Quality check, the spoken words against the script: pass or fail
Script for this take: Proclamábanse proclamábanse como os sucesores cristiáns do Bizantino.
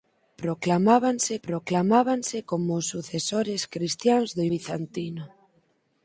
pass